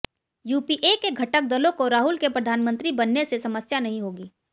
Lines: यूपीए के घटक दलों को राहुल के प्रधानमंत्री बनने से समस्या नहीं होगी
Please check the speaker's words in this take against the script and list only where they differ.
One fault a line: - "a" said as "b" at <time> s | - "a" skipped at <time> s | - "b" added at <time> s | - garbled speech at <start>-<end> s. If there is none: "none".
none